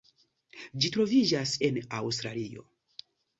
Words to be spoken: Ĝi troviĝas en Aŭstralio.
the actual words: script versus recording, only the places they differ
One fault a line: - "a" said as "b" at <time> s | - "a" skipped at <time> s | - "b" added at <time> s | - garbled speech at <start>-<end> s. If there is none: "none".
none